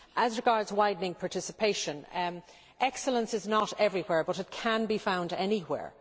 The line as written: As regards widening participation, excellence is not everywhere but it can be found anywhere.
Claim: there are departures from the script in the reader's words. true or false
false